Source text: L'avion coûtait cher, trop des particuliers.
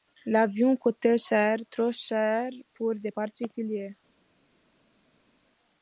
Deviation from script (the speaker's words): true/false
true